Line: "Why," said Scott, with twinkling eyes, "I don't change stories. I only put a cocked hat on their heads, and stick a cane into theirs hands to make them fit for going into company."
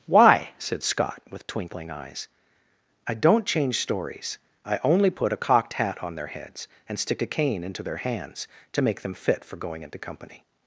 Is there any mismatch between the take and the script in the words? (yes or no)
yes